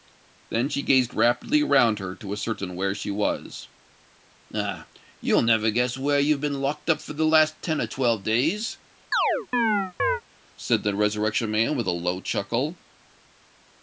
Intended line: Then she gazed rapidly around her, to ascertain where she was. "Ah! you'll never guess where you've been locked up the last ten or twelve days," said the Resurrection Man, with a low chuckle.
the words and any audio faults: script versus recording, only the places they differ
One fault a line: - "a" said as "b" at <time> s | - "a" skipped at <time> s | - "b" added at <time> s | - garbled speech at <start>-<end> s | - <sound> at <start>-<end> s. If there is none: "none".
- "for" added at 7.0 s
- chirp at 9.1-10.2 s